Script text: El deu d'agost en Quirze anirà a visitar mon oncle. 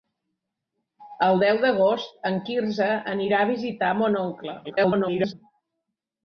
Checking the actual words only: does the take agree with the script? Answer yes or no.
no